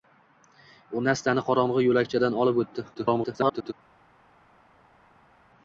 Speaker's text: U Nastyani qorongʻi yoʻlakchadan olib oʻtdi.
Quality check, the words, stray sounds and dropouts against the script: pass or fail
fail